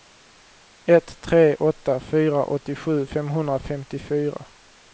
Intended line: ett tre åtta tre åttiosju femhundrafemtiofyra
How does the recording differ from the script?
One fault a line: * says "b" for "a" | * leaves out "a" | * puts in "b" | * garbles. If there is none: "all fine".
* says "fyra" for "tre"